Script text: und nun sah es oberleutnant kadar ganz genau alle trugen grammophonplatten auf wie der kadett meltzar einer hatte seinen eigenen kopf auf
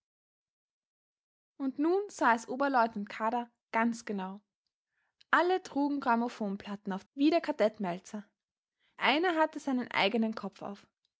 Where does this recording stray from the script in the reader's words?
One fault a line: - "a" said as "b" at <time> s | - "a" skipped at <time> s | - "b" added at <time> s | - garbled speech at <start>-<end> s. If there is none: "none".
none